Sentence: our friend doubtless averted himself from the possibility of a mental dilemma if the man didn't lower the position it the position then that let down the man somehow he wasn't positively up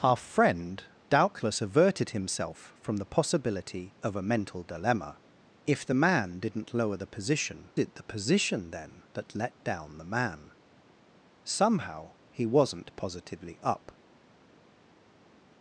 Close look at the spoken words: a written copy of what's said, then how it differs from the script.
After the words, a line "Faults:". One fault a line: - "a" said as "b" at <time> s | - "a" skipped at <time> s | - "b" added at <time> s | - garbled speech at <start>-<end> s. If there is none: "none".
our friend doubtless averted himself from the possibility of a mental dilemma if the man didn't lower the position it the position then that let down the man somehow he wasn't positively up
Faults:
none